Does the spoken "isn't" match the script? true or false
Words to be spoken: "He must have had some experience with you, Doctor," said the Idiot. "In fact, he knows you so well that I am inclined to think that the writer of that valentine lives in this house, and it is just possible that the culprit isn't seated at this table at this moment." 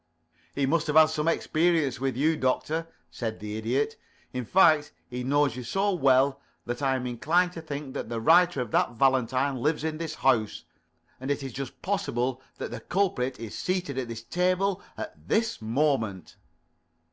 false